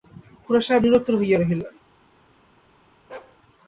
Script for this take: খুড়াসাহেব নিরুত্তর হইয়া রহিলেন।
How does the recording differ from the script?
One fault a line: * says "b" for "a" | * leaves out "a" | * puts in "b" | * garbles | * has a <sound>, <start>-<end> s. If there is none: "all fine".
* has a bark, 3.1-3.4 s